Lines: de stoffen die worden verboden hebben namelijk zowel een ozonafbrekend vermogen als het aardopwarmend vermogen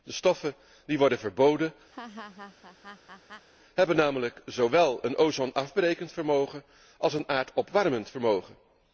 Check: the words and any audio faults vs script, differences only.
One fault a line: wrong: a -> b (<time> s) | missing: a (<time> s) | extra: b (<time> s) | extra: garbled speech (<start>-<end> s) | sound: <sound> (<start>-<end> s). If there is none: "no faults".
sound: laugh (1.9-3.5 s)
wrong: het -> een (7.1 s)